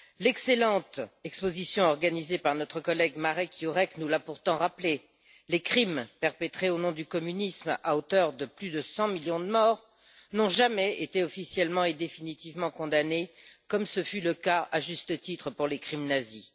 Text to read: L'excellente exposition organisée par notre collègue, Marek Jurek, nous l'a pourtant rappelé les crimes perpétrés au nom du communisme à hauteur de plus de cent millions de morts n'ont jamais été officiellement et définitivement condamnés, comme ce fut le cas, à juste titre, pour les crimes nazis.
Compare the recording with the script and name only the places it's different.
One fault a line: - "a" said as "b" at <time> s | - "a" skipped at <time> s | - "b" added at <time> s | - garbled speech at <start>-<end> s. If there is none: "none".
none